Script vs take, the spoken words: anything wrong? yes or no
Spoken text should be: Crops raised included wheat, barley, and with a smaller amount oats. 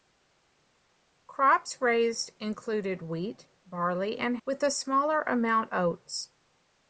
no